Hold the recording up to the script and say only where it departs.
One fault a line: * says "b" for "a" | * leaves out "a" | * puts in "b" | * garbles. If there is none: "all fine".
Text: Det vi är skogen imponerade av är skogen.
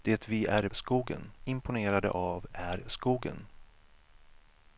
all fine